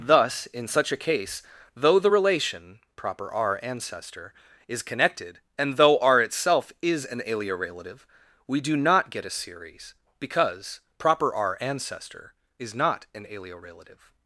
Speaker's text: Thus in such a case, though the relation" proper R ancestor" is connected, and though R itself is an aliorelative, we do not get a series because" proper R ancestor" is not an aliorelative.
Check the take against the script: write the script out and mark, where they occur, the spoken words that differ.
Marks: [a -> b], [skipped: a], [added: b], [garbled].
Thus in such a case, though the relation" proper R ancestor" is connected, and though R itself is an aliorelative, we do not get a series because" proper R ancestor" is not an aliorelative.